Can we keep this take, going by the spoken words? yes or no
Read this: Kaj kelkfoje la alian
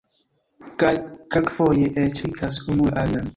no